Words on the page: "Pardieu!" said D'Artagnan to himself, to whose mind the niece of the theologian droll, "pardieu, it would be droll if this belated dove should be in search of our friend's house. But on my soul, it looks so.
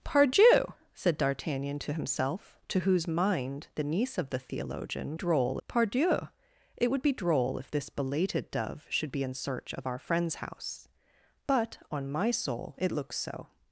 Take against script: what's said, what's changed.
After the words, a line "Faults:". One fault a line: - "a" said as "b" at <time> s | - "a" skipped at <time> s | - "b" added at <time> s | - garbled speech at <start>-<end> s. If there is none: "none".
"Pardieu!" said D'Artagnan to himself, to whose mind the niece of the theologian droll, "pardieu, it would be droll if this belated dove should be in search of our friend's house. But on my soul, it looks so.
Faults:
none